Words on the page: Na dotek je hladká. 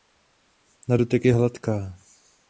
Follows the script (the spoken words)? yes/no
yes